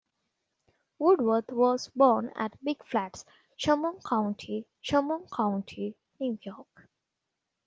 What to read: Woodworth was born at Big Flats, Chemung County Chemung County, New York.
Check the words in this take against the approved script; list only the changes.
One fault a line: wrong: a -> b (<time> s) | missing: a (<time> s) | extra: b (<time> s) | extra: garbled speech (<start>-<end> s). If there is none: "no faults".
no faults